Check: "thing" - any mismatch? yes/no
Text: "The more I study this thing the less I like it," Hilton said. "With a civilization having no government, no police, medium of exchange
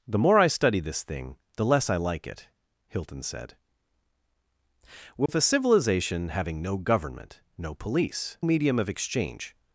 no